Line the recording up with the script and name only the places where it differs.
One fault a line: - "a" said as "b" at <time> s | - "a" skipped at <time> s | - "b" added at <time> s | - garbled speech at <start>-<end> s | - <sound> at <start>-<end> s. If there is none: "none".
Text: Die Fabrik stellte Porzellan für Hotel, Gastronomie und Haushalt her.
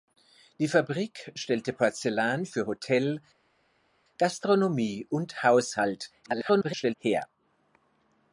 - garbled speech at 6.2-6.9 s